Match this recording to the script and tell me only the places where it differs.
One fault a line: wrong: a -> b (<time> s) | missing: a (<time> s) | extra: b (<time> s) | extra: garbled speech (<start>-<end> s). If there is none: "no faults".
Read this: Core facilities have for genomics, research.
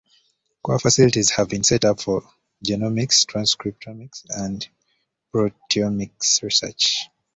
extra: been set up (1.5 s)
extra: transcriptomics and proteomics (3.2 s)